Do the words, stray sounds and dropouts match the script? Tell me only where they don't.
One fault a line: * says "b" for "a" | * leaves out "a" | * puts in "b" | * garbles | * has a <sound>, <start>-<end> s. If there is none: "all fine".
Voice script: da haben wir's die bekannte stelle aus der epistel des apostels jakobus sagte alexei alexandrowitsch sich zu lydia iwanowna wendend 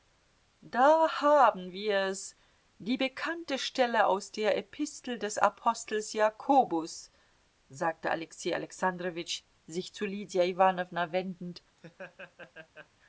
* has a laugh, 11.8-12.9 s